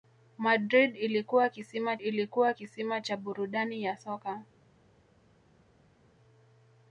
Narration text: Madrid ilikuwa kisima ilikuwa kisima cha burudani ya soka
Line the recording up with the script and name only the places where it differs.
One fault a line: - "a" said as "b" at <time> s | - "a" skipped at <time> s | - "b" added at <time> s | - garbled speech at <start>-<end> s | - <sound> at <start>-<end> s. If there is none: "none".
none